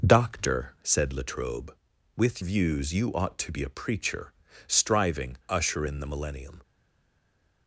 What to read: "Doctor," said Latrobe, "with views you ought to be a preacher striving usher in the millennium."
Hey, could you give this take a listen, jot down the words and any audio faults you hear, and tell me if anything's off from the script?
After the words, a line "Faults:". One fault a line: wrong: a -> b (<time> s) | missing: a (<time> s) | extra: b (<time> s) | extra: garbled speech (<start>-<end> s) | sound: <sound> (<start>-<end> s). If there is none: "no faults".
"Doctor," said Latrobe, "with views you ought to be a preacher striving usher in the millennium."
Faults:
no faults